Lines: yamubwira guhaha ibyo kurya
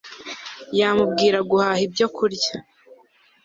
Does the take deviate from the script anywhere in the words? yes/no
no